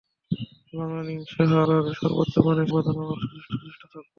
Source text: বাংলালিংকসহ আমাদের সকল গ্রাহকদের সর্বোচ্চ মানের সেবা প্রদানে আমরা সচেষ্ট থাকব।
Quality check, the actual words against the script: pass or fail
fail